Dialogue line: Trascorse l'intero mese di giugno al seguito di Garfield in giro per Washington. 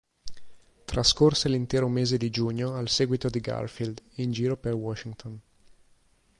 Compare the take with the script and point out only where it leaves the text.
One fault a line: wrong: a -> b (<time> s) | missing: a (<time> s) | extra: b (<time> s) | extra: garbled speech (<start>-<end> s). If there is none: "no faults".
no faults